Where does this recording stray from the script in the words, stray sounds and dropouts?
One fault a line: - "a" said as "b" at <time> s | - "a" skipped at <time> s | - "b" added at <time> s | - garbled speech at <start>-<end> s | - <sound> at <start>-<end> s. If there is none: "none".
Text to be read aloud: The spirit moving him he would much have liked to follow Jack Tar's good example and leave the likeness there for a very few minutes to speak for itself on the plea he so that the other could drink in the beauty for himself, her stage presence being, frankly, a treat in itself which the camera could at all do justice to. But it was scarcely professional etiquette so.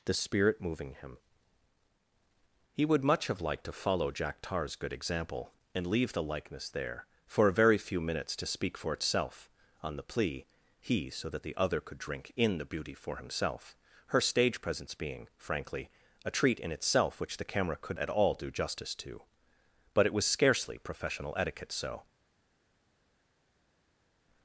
none